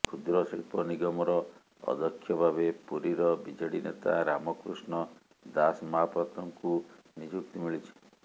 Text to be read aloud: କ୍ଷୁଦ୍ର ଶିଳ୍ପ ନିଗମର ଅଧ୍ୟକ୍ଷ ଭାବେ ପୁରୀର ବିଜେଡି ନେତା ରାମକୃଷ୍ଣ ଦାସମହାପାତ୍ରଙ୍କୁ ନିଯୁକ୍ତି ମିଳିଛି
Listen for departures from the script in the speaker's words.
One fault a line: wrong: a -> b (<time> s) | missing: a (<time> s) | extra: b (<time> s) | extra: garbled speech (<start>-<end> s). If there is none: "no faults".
no faults